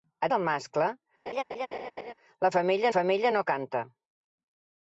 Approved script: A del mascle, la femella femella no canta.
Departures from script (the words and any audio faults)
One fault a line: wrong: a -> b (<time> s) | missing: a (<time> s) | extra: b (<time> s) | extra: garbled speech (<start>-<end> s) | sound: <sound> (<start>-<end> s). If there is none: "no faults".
sound: laugh (1.3-2.1 s)